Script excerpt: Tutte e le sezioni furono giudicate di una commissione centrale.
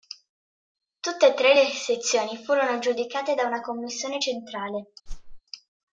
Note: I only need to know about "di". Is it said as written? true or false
false